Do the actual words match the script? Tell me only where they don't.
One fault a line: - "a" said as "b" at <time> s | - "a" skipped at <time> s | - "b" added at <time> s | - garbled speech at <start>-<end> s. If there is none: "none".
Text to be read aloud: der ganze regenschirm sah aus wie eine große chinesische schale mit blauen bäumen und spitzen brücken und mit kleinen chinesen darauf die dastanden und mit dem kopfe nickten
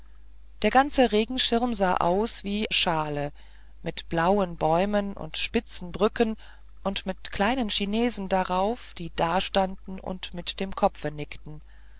- "eine große chinesische" skipped at 2.7 s